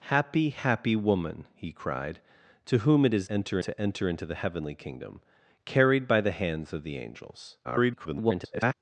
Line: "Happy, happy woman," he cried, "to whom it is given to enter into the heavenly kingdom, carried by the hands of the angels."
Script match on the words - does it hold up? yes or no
no